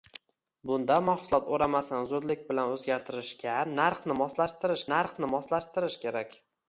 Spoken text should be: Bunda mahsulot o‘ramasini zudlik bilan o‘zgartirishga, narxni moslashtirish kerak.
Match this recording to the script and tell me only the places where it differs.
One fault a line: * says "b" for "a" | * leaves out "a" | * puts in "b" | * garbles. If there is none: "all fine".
* puts in "narxni moslashtirish"